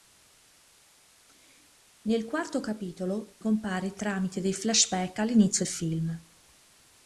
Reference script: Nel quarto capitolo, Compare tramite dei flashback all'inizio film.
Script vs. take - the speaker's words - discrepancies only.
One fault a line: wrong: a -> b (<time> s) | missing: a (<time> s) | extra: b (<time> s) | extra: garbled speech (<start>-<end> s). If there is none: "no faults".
no faults